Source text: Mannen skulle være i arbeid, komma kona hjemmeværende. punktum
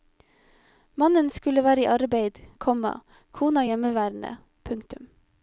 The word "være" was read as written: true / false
true